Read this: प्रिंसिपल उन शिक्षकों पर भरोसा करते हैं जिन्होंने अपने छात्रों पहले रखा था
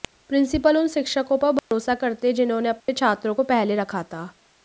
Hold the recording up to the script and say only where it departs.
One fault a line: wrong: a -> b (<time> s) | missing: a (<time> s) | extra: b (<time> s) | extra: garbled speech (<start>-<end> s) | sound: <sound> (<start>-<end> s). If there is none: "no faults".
sound: dropout (1.6-1.7 s)
sound: dropout (2.8-2.9 s)
extra: को (3.3 s)